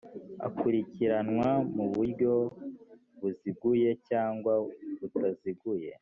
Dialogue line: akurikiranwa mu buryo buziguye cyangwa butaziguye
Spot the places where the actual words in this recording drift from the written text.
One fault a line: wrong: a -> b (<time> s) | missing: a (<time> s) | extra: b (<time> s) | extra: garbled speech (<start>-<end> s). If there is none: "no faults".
no faults